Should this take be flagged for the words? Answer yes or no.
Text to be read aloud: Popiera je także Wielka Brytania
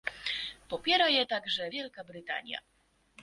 no